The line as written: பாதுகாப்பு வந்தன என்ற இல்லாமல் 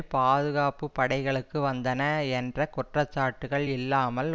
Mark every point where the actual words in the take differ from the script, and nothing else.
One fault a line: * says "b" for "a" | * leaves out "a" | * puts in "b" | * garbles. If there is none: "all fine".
* puts in "படைகளுக்கு"
* puts in "குற்றச்சாட்டுக்கள்"